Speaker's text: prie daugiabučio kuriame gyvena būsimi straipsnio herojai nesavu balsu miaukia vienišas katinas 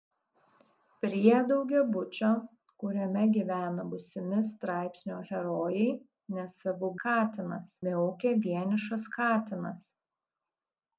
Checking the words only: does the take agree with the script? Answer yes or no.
no